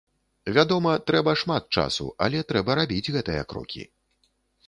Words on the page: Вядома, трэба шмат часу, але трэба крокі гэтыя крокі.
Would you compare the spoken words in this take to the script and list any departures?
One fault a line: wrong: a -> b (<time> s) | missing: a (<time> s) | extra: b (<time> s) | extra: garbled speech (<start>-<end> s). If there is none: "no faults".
wrong: крокі -> рабіць (2.8 s)